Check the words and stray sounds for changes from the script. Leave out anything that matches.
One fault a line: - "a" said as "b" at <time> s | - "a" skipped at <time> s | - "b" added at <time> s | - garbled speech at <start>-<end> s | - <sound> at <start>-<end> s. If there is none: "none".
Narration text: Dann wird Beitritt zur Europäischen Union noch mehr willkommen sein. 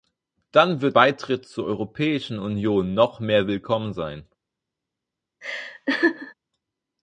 - laugh at 5.4-6.3 s